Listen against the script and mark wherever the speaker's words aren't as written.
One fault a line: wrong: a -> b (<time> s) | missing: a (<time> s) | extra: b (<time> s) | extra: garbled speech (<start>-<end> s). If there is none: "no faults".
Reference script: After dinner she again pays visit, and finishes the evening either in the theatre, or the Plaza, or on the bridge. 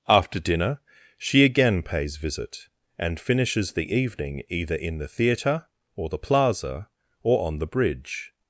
no faults